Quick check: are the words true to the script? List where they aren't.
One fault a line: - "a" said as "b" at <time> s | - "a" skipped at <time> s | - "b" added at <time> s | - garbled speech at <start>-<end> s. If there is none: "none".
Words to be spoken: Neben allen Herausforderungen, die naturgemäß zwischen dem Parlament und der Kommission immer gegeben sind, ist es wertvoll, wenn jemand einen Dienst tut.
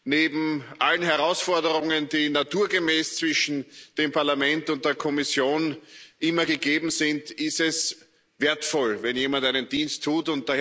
none